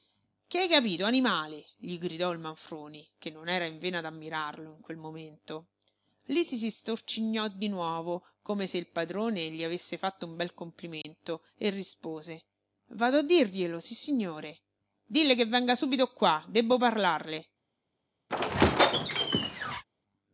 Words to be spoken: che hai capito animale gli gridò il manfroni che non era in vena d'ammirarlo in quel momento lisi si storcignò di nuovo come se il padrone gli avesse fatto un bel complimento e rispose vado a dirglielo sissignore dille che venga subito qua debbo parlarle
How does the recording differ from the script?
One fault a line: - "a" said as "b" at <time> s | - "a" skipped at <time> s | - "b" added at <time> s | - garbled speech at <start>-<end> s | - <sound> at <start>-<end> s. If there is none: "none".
- dropout at 11.0-11.0 s
- squeak at 18.3-19.8 s